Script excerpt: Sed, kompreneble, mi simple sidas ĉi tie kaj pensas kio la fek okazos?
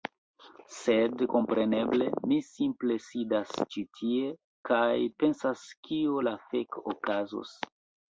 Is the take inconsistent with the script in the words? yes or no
no